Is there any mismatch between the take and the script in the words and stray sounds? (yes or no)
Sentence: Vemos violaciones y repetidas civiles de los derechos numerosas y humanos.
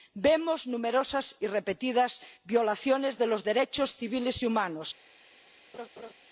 yes